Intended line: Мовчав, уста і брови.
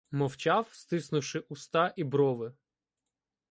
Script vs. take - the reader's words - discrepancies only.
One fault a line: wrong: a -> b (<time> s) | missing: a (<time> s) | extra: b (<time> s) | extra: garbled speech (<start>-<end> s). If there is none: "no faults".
extra: стиснувши (0.7 s)